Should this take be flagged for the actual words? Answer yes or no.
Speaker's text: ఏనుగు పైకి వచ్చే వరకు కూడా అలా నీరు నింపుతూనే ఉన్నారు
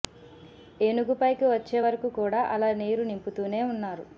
no